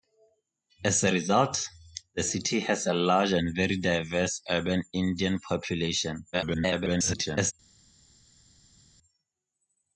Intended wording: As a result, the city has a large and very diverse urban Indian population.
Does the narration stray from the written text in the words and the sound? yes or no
yes